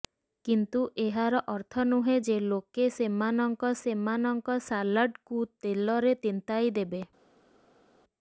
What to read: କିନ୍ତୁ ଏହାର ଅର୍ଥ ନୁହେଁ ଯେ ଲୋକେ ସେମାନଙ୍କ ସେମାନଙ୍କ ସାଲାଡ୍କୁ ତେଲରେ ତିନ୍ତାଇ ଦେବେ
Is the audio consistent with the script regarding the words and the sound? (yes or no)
yes